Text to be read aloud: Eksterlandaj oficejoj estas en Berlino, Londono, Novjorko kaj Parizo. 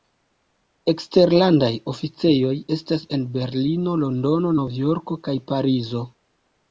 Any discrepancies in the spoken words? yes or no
no